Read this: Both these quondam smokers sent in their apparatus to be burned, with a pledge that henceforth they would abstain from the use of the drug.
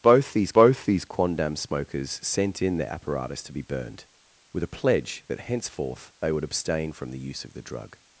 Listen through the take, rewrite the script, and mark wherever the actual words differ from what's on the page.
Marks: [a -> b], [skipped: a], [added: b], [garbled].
Both these [added: both these] quondam smokers sent in their apparatus to be burned, with a pledge that henceforth they would abstain from the use of the drug.